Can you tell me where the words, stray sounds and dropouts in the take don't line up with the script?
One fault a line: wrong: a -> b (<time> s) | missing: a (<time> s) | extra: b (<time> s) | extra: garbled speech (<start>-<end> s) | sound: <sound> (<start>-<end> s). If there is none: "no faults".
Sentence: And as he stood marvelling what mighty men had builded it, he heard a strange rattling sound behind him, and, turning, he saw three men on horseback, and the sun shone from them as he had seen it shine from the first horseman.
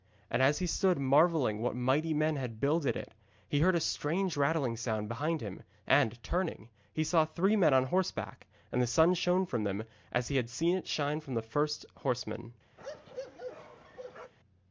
sound: bark (12.8-14.3 s)